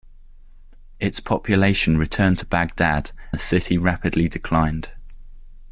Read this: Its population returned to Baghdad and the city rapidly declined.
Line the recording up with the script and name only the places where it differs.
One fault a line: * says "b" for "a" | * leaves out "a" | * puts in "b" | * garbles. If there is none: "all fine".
* leaves out "and"